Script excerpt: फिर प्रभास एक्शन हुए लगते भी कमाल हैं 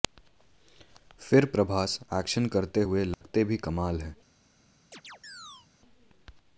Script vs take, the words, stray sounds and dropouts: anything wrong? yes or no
yes